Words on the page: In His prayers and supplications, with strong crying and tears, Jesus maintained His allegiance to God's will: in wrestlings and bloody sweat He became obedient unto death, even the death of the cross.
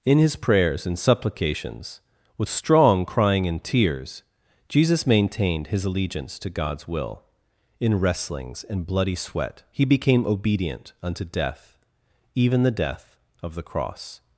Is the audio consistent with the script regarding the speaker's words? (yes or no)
yes